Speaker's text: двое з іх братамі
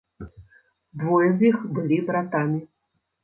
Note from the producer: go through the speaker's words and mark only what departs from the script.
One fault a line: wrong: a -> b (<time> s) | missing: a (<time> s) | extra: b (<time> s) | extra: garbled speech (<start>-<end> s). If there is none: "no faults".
extra: былі (1.8 s)